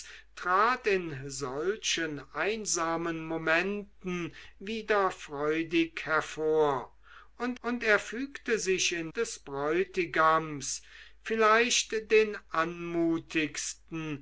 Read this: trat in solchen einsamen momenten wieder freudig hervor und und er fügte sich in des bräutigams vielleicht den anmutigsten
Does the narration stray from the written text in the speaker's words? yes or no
no